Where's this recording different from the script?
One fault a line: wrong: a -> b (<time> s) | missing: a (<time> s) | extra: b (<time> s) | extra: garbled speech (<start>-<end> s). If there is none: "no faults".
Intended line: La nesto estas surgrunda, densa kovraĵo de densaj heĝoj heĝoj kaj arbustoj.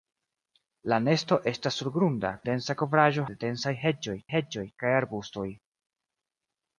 no faults